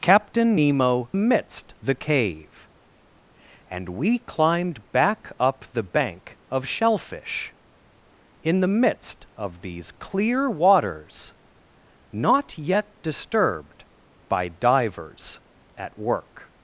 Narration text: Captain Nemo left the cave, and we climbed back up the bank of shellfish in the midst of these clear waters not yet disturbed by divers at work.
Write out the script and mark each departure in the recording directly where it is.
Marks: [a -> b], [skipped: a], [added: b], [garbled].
Captain Nemo [left -> midst] the cave, and we climbed back up the bank of shellfish in the midst of these clear waters not yet disturbed by divers at work.